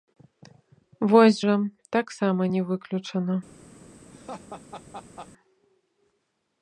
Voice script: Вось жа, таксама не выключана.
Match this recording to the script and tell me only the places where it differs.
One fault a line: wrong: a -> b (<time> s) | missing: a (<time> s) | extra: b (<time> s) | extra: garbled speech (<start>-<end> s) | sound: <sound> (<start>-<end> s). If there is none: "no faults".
sound: laugh (4.1-5.3 s)